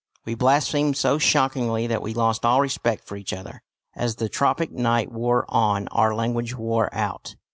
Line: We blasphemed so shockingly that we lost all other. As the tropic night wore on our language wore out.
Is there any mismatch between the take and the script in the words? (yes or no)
yes